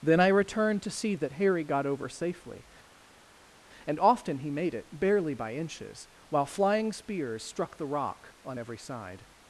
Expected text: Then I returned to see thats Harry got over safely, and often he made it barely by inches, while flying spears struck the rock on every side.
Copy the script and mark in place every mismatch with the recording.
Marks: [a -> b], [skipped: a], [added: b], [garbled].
Then I returned to see [thats -> that] Harry got over safely, and often he made it barely by inches, while flying spears struck the rock on every side.